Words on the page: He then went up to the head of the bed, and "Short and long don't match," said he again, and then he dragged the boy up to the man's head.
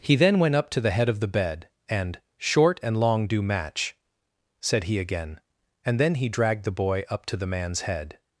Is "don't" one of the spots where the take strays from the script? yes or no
yes